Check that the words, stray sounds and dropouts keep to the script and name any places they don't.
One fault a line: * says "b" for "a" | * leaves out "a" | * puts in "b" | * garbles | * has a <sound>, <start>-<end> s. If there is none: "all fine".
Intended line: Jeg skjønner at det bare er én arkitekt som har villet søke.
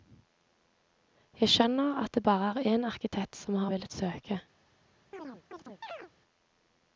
* has a chirp, 5.1-6.1 s